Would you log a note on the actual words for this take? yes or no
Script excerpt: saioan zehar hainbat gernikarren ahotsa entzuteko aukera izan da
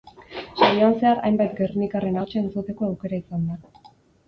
no